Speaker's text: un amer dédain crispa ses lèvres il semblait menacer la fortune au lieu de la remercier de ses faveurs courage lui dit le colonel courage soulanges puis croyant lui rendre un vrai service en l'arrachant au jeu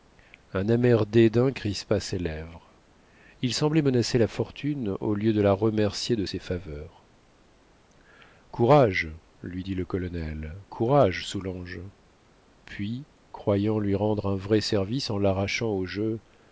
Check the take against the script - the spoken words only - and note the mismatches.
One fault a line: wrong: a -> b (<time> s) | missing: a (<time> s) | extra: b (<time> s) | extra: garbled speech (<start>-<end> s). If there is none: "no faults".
no faults